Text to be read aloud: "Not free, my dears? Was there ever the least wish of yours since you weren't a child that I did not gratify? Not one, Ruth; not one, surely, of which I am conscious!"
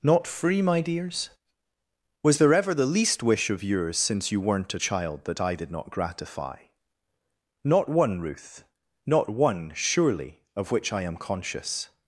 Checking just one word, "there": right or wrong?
right